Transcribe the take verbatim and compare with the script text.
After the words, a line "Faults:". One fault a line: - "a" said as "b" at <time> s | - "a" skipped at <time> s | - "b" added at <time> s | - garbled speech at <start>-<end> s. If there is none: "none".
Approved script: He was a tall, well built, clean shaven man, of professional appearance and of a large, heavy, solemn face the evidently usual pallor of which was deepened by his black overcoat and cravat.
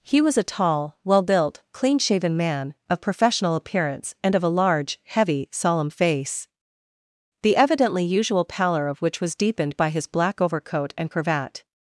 He was a tall, well built, clean shaven man, of professional appearance and of a large, heavy, solemn face the evidently usual pallor of which was deepened by his black overcoat and cravat.
Faults:
none